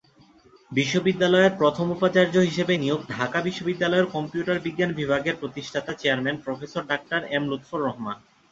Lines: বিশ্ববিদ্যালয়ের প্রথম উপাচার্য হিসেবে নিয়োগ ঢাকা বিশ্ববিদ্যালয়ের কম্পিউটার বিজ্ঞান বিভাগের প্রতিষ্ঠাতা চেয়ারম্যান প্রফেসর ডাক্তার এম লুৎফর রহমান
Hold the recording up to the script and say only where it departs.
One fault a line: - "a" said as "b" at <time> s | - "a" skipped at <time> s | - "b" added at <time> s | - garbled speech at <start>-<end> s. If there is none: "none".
none